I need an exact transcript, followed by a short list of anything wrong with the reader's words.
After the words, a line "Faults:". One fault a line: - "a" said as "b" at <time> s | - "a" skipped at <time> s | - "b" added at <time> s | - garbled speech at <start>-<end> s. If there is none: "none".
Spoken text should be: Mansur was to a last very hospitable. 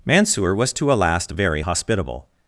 Mansur was to a last very hospitable.
Faults:
none